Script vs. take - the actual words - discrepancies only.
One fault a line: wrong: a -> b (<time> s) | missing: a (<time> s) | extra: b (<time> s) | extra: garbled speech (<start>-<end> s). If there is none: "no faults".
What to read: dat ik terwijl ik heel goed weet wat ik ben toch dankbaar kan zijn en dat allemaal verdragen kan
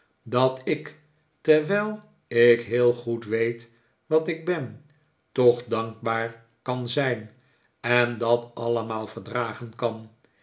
no faults